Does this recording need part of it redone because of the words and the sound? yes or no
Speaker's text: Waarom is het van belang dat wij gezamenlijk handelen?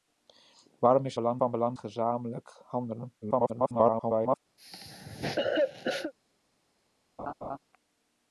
yes